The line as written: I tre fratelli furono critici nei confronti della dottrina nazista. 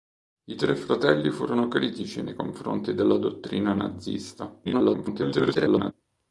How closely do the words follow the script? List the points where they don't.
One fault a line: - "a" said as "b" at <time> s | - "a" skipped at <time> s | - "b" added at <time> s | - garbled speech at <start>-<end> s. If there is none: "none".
- garbled speech at 4.6-5.9 s